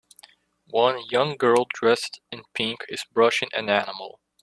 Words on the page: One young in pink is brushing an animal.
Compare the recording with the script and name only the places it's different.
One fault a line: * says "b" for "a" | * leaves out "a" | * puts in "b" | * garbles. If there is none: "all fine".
* puts in "girl dressed"